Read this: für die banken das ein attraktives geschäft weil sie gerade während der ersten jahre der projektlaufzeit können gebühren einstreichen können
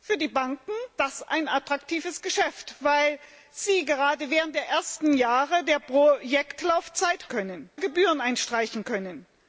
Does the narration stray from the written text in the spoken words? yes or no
no